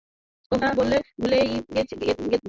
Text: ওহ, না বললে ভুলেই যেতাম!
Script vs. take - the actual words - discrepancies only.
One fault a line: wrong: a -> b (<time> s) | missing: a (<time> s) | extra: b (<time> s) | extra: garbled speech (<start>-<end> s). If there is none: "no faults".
no faults